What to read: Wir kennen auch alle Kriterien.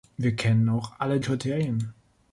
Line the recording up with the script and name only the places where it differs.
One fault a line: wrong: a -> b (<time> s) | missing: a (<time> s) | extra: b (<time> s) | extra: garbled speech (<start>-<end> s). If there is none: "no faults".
no faults